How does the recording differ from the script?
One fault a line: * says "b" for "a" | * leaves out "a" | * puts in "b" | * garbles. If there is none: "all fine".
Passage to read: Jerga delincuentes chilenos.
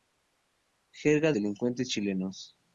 all fine